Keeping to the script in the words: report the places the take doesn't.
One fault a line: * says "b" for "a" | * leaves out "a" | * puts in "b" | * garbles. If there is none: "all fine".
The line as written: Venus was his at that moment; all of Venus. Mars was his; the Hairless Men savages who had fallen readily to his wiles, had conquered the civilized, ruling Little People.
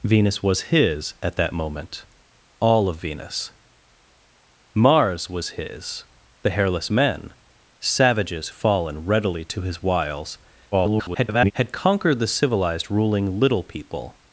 * leaves out "who had"
* garbles